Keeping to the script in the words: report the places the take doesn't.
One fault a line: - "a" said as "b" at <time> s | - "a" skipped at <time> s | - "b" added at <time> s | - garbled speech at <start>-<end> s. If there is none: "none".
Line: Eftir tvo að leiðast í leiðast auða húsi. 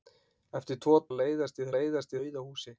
none